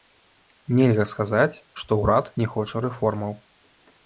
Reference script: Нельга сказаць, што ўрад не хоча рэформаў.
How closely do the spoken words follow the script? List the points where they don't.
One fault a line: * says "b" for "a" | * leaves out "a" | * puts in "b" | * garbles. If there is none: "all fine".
all fine